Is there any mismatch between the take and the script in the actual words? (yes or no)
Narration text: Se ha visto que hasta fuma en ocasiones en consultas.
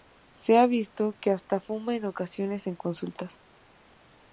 no